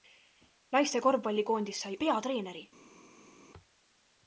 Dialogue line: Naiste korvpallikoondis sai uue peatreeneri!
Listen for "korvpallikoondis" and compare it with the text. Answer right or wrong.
right